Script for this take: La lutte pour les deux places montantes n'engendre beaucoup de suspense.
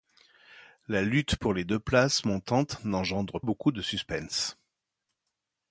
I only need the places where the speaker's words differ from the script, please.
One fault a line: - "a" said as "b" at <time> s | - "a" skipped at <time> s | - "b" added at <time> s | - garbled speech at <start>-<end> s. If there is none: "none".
none